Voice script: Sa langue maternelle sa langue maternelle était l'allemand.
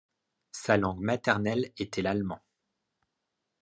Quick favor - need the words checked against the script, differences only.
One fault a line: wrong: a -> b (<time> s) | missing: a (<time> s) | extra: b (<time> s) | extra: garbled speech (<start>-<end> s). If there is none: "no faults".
missing: sa langue maternelle (1.7 s)